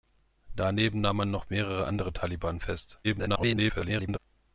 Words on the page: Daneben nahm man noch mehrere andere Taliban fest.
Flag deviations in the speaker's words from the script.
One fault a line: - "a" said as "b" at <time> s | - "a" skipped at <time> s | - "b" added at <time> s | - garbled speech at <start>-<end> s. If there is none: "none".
- garbled speech at 3.0-4.2 s